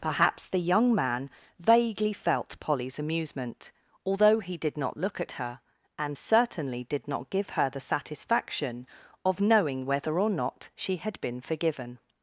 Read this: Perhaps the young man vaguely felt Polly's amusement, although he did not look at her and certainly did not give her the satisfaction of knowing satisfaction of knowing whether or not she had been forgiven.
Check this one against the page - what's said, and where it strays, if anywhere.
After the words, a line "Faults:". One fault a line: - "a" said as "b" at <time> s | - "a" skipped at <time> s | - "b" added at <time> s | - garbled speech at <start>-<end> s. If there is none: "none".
Perhaps the young man vaguely felt Polly's amusement, although he did not look at her and certainly did not give her the satisfaction of knowing whether or not she had been forgiven.
Faults:
- "satisfaction of knowing" skipped at 9.8 s